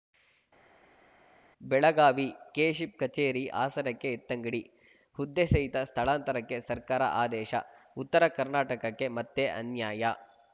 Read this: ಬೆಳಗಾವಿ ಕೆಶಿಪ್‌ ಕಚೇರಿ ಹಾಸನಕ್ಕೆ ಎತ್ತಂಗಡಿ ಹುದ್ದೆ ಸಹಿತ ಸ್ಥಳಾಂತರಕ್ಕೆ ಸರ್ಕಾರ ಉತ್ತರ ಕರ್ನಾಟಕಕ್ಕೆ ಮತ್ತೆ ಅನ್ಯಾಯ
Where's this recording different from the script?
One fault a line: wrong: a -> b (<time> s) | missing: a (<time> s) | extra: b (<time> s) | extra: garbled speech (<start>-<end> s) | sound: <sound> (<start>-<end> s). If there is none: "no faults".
extra: ಆದೇಶ (7.2 s)